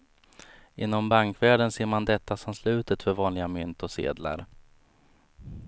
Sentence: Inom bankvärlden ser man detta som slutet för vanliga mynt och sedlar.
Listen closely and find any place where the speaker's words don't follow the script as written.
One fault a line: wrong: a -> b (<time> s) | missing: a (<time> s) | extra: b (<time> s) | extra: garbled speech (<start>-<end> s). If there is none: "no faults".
no faults